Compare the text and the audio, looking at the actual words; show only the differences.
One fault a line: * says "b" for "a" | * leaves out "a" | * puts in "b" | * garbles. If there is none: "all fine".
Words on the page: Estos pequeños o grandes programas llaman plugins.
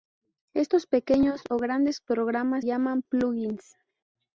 all fine